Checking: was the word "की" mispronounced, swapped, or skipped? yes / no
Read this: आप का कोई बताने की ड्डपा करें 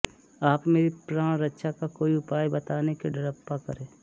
no